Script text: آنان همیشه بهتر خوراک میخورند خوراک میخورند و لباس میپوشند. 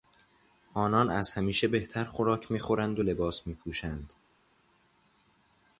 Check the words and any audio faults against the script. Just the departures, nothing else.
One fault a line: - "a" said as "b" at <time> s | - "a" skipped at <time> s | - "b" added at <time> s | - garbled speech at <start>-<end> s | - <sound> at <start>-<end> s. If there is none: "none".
- "از" added at 1.1 s
- "خوراک میخورند" skipped at 3.0 s